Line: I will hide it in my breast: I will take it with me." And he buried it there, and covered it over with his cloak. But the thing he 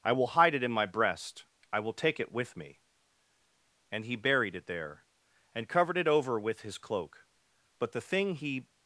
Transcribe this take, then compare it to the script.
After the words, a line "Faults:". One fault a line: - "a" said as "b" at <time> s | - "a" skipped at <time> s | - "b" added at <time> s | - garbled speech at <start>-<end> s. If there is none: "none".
I will hide it in my breast: I will take it with me." And he buried it there, and covered it over with his cloak. But the thing he
Faults:
none